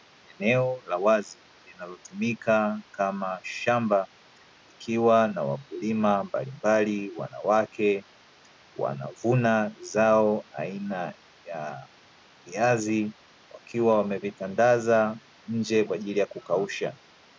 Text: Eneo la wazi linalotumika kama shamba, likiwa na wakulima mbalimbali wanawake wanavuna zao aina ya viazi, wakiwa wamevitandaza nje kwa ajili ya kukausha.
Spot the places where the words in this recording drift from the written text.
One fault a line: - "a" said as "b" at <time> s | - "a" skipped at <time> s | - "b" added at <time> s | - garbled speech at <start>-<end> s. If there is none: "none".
none